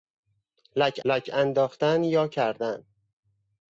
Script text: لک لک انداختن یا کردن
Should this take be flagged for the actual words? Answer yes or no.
no